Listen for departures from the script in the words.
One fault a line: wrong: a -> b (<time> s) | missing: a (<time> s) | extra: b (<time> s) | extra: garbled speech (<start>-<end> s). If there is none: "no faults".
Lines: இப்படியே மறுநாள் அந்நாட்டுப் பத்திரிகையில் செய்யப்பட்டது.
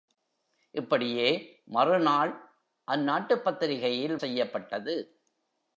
no faults